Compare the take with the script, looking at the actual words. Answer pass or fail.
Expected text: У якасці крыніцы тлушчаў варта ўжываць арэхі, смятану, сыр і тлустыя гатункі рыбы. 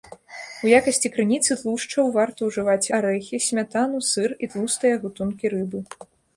pass